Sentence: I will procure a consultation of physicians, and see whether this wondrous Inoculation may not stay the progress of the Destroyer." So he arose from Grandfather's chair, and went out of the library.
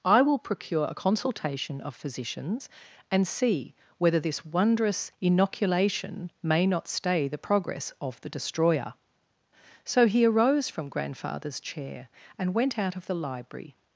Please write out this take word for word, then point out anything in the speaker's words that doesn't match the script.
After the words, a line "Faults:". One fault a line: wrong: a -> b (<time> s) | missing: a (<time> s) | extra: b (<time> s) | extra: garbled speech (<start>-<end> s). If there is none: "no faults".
I will procure a consultation of physicians, and see whether this wondrous Inoculation may not stay the progress of the Destroyer." So he arose from Grandfather's chair, and went out of the library.
Faults:
no faults